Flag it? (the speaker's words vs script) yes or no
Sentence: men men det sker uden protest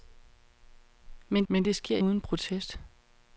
no